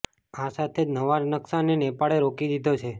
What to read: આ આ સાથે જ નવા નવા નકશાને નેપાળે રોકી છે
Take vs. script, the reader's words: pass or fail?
fail